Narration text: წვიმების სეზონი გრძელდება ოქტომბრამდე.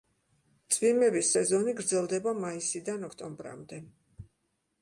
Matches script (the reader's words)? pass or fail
fail